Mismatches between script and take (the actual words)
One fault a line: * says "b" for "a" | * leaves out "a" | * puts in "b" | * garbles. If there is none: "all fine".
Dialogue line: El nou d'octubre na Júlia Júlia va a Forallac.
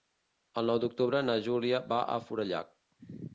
* leaves out "Júlia"